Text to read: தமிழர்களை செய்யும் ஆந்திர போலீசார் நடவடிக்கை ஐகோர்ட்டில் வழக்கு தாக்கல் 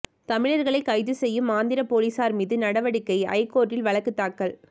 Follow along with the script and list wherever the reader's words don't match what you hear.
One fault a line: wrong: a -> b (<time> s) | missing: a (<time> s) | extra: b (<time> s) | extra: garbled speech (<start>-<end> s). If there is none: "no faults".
extra: கைது (0.8 s)
extra: மீது (2.4 s)